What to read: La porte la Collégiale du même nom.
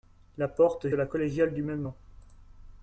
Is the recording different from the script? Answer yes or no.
no